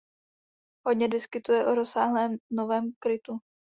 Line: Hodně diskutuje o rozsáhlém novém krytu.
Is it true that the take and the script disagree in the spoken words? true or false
false